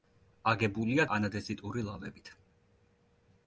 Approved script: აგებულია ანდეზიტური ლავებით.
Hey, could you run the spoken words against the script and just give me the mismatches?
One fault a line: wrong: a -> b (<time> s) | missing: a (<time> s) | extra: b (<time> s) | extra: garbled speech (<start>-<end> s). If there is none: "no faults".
no faults